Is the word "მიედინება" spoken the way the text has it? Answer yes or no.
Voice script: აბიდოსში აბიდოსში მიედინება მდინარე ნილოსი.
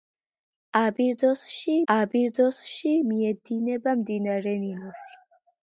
yes